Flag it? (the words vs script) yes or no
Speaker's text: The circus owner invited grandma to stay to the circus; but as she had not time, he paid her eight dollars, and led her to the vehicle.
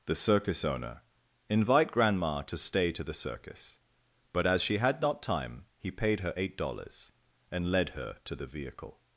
yes